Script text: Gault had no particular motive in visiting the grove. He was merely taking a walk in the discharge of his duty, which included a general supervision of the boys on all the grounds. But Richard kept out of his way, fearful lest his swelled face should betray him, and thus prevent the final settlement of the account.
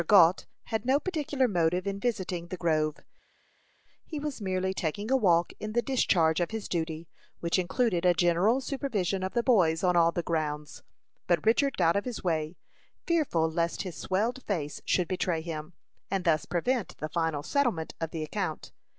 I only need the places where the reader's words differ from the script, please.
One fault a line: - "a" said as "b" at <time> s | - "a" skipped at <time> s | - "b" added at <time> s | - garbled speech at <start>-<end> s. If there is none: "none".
- "kept" skipped at 11.8 s